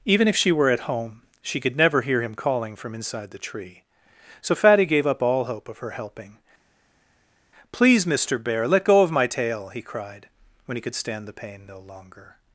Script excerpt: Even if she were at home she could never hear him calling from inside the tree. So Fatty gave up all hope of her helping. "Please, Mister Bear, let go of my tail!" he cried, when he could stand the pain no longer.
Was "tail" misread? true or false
false